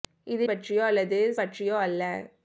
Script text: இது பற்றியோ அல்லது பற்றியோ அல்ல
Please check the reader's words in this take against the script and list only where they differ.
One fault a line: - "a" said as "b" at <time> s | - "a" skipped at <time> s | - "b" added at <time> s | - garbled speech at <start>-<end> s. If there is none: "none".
none